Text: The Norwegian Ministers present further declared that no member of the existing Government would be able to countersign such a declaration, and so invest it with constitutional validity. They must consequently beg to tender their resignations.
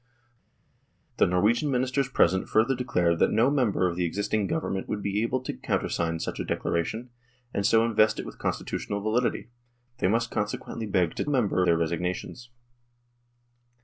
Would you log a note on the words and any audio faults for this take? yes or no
yes